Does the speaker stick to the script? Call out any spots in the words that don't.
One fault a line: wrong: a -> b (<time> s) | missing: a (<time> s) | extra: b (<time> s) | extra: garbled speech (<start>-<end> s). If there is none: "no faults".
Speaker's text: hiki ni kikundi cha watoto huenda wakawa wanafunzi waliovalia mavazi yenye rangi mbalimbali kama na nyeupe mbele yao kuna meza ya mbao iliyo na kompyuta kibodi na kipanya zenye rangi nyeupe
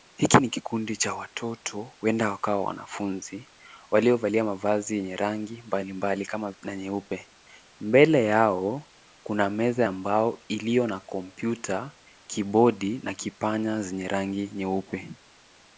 no faults